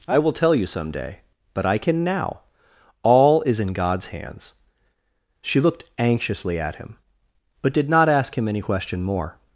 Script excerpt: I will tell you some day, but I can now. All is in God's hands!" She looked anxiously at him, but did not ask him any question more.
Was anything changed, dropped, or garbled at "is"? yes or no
no